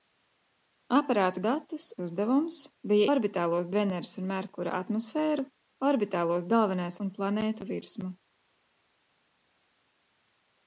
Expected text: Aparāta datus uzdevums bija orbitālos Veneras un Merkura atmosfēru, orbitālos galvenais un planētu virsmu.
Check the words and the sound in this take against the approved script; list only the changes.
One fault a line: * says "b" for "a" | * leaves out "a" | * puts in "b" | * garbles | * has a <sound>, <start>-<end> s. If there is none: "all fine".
all fine